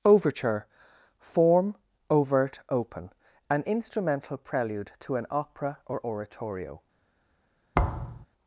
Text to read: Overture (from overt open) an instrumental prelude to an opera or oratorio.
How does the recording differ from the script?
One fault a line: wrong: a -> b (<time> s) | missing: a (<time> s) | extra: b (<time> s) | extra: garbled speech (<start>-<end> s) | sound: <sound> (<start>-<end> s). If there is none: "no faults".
wrong: from -> form (1.2 s)
sound: thud (7.7-8.3 s)